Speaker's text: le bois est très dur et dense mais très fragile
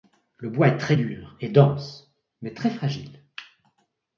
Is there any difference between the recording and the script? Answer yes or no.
no